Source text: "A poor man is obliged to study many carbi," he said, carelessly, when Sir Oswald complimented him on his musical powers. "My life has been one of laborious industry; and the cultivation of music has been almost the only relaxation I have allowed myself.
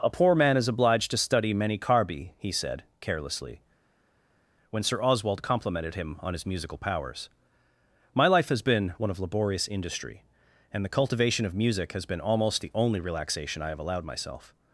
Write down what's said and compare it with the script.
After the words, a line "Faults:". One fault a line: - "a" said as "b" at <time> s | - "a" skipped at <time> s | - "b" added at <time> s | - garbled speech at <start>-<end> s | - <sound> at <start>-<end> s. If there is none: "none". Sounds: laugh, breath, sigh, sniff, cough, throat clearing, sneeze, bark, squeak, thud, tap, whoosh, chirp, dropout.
"A poor man is obliged to study many carbi," he said, carelessly, when Sir Oswald complimented him on his musical powers. "My life has been one of laborious industry; and the cultivation of music has been almost the only relaxation I have allowed myself.
Faults:
none